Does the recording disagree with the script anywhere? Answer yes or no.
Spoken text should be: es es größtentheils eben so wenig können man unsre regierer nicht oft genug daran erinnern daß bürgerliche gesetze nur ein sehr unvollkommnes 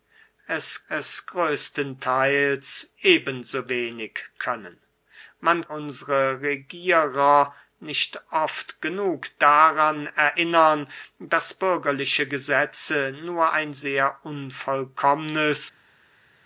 no